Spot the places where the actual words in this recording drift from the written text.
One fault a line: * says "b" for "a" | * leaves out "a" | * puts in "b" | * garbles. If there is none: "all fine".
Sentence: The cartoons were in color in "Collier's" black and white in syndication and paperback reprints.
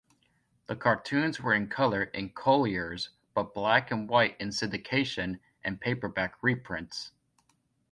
* puts in "but"